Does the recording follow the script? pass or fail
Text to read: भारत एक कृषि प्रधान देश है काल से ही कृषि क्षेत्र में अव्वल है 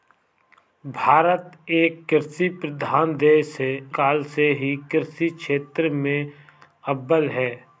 pass